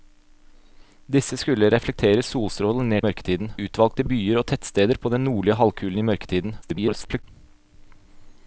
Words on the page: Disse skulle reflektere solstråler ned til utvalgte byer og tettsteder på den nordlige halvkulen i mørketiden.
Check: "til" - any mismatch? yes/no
yes